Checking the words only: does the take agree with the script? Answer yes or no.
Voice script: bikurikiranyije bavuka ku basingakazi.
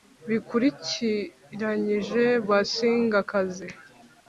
no